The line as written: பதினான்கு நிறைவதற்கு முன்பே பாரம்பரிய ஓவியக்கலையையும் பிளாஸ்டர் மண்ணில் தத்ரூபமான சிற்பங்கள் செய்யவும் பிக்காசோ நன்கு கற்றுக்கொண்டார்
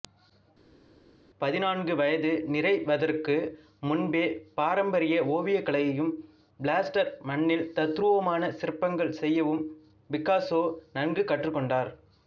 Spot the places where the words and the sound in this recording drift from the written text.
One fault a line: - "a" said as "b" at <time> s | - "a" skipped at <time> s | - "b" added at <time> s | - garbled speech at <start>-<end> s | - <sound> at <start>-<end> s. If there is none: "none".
- "வயது" added at 2.0 s